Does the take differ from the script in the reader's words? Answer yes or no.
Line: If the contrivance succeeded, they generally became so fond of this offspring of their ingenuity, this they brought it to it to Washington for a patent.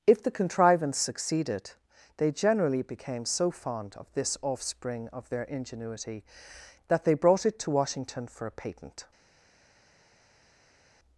yes